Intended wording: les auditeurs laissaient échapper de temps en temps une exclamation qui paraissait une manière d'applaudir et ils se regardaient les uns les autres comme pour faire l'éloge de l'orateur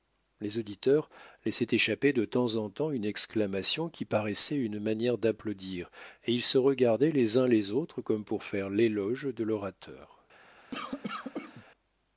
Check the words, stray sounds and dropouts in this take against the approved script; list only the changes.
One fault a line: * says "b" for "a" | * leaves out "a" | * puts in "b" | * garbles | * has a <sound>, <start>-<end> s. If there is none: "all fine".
* has a cough, 10.7-11.6 s